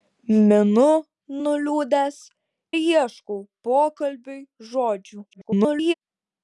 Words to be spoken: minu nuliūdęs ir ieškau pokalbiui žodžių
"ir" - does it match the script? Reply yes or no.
no